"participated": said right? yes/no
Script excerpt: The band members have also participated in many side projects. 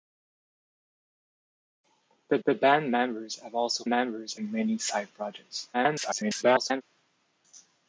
no